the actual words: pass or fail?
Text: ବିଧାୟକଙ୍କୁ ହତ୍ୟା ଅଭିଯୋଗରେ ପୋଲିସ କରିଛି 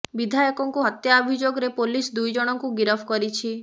fail